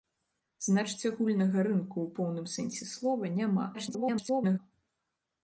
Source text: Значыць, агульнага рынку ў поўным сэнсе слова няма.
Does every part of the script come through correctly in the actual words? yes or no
no